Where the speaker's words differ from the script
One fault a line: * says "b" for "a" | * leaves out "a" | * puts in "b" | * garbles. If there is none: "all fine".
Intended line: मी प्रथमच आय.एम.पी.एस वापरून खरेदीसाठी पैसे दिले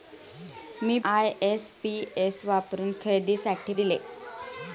* leaves out "प्रथमच"
* leaves out "पैसे"